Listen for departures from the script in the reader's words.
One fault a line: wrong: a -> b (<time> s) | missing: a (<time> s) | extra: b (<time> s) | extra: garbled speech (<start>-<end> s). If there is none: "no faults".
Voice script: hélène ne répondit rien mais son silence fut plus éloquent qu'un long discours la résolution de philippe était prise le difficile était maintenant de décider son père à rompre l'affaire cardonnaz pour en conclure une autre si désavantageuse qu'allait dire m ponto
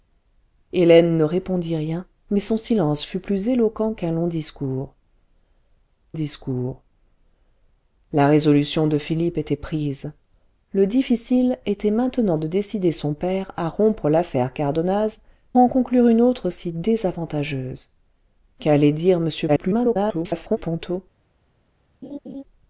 extra: discours (6.1 s)
missing: pour (15.2 s)
extra: garbled speech (19.5-20.6 s)